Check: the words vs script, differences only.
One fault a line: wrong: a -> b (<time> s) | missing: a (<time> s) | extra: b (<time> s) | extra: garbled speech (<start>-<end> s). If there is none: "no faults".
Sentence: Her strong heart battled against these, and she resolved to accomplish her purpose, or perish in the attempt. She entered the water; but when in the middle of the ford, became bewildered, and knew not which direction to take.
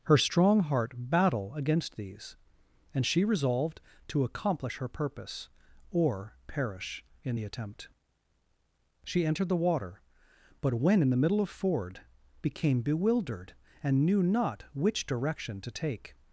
wrong: battled -> battle (1.0 s)
missing: the (11.5 s)